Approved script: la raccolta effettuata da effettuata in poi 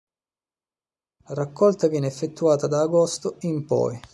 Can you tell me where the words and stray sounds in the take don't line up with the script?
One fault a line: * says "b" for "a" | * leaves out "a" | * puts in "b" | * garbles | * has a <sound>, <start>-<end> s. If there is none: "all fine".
* puts in "viene"
* says "agosto" for "effettuata"